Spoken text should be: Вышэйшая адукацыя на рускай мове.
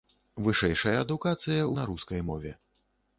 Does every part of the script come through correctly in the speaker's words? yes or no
yes